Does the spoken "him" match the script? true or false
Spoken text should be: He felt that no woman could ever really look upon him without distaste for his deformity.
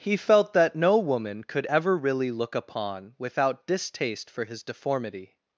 false